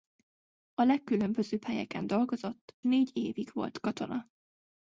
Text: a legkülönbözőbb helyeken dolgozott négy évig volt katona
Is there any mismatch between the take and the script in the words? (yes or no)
no